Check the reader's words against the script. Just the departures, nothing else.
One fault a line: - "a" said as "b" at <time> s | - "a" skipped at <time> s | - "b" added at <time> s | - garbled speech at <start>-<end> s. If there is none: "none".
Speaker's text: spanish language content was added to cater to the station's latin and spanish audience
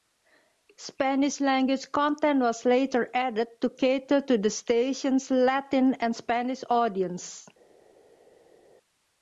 - "later" added at 2.6 s